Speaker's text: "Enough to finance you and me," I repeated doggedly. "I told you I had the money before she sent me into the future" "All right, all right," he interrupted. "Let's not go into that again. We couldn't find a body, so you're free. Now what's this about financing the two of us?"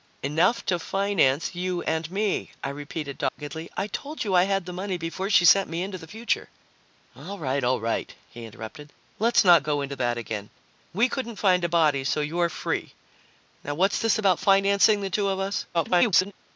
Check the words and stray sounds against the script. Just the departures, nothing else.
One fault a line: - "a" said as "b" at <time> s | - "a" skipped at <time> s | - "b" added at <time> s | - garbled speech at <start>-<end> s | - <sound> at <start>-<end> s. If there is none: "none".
- dropout at 3.3-3.4 s
- garbled speech at 15.7-16.3 s